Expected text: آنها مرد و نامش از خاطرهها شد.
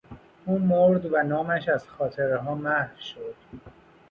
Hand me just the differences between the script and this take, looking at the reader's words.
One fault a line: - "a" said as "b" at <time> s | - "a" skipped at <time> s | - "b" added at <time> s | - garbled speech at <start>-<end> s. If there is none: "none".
- "آنها" said as "او" at 0.5 s
- "محو" added at 2.5 s